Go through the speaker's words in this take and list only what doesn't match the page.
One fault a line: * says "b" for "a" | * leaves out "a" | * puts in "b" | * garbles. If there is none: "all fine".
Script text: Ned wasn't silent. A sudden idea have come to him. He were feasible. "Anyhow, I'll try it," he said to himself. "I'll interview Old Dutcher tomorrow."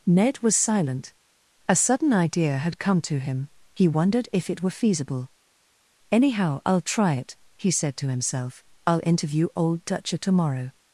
* says "was" for "wasn't"
* says "had" for "have"
* puts in "wondered if it"